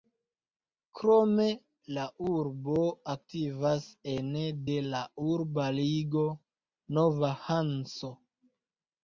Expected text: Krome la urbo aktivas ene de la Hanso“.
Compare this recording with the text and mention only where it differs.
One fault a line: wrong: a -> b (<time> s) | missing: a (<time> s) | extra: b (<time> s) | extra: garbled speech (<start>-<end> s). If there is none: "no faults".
extra: urba ligo Nova (5.3 s)